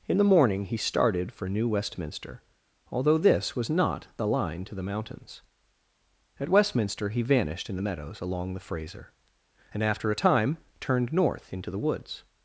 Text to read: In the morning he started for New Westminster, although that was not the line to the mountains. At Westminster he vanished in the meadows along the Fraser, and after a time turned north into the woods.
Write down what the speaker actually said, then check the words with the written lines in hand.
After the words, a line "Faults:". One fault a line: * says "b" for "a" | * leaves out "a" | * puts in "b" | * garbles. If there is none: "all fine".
In the morning he started for New Westminster, although this was not the line to the mountains. At Westminster he vanished in the meadows along the Fraser, and after a time turned north into the woods.
Faults:
* says "this" for "that"